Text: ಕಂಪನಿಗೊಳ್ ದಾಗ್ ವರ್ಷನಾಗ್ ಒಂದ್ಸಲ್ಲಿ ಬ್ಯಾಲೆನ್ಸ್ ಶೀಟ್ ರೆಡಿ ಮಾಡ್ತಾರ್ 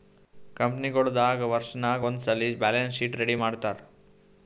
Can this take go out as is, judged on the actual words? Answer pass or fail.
pass